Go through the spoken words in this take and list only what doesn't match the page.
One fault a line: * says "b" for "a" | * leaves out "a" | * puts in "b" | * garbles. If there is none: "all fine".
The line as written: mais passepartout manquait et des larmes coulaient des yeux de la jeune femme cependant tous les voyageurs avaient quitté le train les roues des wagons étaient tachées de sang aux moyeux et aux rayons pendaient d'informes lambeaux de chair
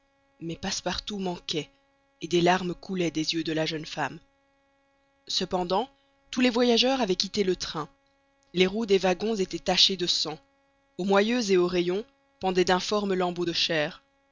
all fine